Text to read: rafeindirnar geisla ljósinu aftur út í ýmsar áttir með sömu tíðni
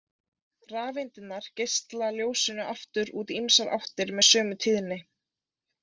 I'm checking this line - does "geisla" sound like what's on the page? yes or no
yes